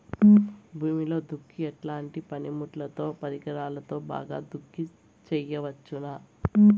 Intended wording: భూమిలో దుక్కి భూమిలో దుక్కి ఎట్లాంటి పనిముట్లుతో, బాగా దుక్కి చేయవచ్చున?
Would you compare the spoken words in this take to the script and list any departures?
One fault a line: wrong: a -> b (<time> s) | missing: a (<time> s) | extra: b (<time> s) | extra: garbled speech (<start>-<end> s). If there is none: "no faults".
missing: భూమిలో దుక్కి (1.6 s)
extra: పరికరాలతో (3.2 s)